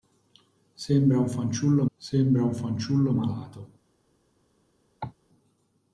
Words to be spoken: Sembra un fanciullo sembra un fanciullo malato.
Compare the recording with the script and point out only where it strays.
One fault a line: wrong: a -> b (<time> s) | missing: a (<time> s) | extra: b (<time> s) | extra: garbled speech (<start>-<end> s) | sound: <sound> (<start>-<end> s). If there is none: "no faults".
sound: cough (5.0-5.1 s)